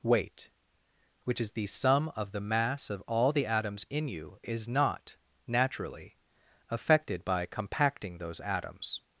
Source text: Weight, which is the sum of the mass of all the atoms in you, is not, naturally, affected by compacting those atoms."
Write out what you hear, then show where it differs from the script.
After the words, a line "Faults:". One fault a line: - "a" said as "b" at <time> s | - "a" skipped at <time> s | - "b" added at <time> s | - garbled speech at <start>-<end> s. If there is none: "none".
Weight, which is the sum of the mass of all the atoms in you, is not, naturally, affected by compacting those atoms."
Faults:
none